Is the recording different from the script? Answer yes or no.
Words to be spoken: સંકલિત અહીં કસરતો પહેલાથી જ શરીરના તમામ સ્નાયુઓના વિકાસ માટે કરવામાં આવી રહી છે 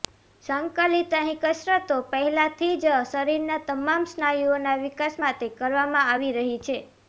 no